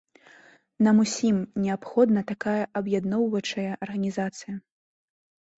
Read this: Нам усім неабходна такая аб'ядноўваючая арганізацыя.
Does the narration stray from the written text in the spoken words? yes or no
no